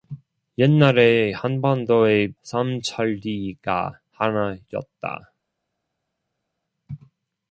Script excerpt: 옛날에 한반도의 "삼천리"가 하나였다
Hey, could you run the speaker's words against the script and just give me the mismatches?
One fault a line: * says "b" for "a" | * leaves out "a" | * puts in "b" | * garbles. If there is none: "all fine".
all fine